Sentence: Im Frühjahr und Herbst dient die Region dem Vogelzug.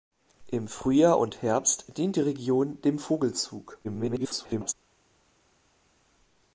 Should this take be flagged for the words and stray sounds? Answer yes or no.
yes